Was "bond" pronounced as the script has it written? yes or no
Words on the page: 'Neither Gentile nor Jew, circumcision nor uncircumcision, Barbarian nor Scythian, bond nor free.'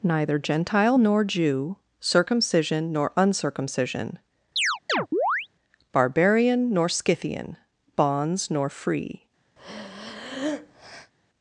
no